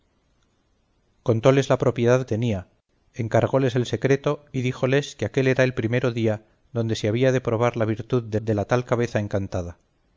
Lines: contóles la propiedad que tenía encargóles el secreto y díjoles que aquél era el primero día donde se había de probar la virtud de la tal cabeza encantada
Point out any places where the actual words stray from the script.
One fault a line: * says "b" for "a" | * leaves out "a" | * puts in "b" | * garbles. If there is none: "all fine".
* leaves out "que"
* puts in "de"